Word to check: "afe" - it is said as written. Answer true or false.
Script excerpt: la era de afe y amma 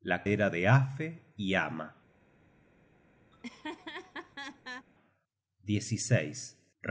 true